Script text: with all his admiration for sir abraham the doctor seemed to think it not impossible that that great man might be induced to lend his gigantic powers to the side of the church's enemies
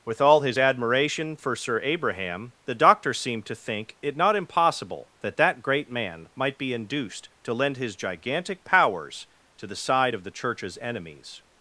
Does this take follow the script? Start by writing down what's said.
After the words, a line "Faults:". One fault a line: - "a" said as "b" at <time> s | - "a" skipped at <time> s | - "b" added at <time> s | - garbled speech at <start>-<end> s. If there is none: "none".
with all his admiration for sir abraham the doctor seemed to think it not impossible that that great man might be induced to lend his gigantic powers to the side of the church's enemies
Faults:
none